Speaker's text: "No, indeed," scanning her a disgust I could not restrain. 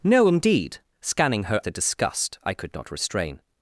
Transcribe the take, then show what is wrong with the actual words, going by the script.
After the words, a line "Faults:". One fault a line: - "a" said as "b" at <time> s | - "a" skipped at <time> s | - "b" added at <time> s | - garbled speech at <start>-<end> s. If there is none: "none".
"No, indeed," scanning her a disgust I could not restrain.
Faults:
none